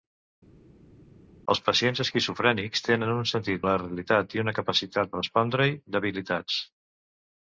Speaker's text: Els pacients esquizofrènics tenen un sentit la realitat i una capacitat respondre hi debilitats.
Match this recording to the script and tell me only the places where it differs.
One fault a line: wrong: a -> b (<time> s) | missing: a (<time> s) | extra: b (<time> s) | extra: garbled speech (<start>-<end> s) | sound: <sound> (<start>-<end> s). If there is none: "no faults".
no faults